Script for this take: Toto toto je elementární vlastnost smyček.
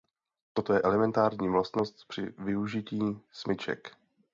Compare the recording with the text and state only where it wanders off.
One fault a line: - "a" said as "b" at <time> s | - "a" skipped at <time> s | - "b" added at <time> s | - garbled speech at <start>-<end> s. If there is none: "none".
- "toto" skipped at 0.7 s
- "při využití" added at 2.1 s